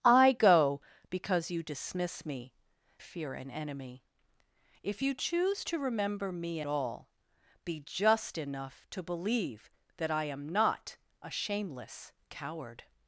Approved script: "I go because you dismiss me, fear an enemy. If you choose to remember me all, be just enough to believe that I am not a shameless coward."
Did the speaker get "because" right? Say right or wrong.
right